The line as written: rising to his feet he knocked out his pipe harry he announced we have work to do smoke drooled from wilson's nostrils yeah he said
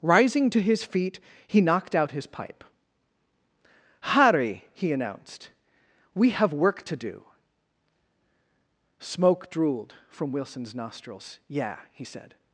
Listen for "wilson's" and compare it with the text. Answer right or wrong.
right